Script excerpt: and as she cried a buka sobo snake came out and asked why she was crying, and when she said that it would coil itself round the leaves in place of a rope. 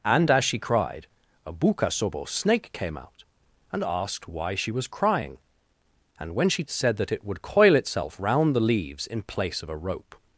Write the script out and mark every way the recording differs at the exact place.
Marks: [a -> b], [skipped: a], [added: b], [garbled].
and as she cried a buka sobo snake came out and asked why she was crying, and when she said that it would coil itself round the leaves in place of a rope.